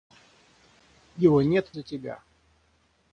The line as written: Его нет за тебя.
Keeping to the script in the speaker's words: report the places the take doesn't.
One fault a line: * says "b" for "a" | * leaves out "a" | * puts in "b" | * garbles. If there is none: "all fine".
all fine